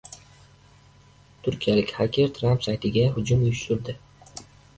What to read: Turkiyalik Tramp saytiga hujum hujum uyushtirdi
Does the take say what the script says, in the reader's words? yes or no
no